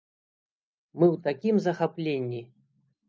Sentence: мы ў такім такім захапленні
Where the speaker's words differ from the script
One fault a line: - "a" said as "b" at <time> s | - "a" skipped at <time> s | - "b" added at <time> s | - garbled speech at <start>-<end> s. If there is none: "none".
- "такім" skipped at 1.6 s